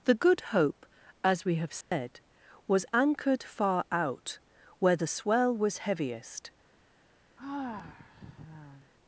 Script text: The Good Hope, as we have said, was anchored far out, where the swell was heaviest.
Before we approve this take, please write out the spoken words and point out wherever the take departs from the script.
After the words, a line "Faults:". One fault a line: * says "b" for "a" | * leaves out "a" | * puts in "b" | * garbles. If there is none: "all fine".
The Good Hope, as we have said, was anchored far out, where the swell was heaviest.
Faults:
all fine